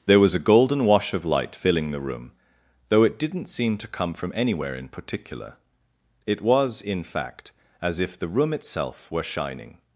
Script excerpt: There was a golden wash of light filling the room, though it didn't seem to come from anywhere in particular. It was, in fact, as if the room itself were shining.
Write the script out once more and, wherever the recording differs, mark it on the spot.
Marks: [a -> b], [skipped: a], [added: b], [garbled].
There was a golden wash of light filling the room, though it didn't seem to come from anywhere in particular. It was, in fact, as if the room itself were shining.